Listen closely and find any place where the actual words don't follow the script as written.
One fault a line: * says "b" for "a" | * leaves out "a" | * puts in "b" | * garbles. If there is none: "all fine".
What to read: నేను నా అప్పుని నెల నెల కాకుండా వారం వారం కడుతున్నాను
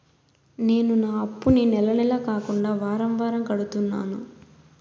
all fine